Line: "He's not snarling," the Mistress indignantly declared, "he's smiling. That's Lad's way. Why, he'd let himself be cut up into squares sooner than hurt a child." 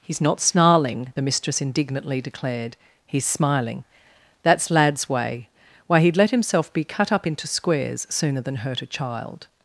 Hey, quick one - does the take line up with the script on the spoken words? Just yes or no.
yes